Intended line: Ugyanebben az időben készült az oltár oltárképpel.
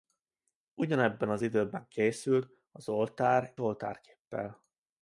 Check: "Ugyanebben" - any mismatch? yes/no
no